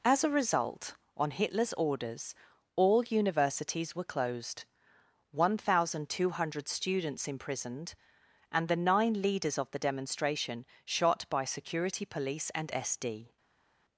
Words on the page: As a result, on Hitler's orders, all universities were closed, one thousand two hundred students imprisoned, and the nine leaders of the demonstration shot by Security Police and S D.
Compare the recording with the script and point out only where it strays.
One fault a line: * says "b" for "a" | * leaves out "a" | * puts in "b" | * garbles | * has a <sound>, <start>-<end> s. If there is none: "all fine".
all fine